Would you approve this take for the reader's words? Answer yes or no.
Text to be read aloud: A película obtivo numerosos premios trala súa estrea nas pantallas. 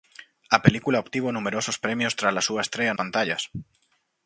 no